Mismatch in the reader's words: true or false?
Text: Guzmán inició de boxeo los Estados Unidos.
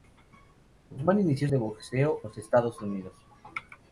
false